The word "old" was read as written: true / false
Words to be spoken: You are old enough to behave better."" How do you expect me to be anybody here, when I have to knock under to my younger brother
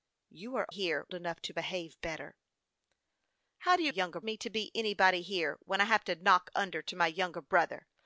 false